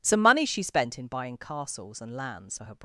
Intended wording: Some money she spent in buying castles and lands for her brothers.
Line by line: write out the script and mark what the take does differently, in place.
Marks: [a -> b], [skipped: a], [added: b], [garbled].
Some money she spent in buying castles and lands for her [skipped: brothers.]